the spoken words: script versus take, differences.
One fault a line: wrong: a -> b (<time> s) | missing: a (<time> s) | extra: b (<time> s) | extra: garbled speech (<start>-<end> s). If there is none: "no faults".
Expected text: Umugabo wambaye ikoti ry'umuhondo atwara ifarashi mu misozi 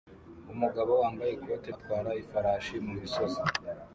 missing: ry'umuhondo (1.7 s)